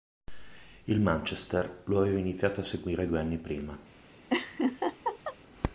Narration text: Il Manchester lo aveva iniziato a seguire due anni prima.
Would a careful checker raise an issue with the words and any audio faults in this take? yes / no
yes